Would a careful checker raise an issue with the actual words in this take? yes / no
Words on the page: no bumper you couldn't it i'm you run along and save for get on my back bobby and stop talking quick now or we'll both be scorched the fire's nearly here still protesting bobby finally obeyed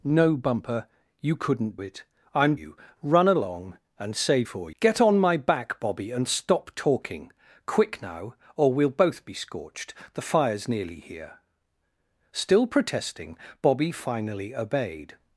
no